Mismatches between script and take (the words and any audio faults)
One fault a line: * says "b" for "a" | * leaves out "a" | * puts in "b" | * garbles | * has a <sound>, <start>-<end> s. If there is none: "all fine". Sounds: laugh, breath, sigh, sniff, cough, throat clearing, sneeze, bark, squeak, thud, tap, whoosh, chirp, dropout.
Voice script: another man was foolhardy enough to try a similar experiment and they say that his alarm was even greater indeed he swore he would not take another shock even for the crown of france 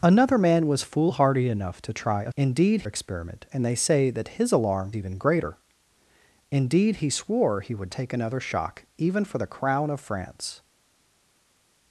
* says "indeed" for "similar"
* leaves out "was"
* leaves out "not"